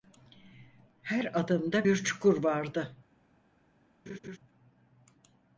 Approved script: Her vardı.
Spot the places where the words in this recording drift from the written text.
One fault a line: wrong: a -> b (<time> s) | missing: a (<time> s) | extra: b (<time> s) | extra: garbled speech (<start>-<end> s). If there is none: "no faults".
extra: adımda bir çukur (1.4 s)